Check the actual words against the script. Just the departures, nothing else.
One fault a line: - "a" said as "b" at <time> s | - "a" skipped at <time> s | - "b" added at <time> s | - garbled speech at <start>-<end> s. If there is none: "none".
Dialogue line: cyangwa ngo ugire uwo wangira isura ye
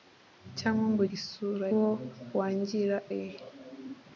- "ugire" said as "isura" at 1.1 s
- "isura" skipped at 3.0 s